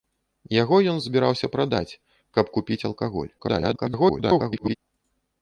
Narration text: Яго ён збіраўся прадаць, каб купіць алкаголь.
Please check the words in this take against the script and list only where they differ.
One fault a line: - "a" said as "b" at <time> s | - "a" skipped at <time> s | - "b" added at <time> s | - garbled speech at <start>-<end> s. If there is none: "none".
- garbled speech at 3.4-4.8 s